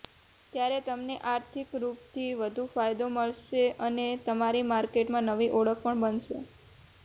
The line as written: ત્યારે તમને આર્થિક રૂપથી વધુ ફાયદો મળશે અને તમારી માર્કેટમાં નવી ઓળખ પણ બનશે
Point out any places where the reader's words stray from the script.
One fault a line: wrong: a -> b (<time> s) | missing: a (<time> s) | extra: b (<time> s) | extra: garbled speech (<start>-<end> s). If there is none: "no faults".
no faults